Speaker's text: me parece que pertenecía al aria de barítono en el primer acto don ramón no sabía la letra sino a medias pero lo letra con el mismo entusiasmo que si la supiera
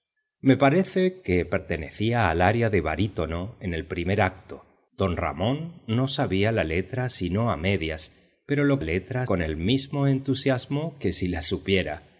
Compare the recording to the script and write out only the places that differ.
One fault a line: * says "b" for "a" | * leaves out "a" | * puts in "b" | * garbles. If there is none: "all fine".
all fine